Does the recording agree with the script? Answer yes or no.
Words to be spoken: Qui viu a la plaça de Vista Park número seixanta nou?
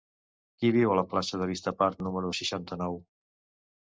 yes